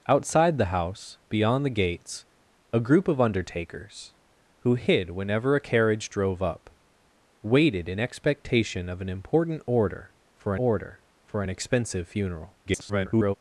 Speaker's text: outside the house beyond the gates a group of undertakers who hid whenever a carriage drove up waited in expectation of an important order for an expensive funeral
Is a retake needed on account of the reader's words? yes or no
yes